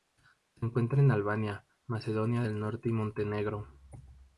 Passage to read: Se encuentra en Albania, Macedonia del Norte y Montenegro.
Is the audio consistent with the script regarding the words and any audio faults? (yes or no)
yes